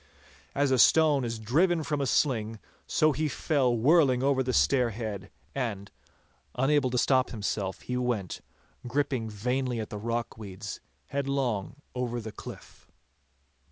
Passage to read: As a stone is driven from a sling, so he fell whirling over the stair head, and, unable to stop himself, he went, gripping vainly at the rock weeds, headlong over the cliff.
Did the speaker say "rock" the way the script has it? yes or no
yes